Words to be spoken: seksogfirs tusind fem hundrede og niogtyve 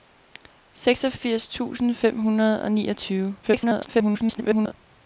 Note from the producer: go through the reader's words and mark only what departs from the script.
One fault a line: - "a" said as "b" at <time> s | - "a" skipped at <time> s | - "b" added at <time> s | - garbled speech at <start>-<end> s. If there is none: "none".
- garbled speech at 3.4-4.7 s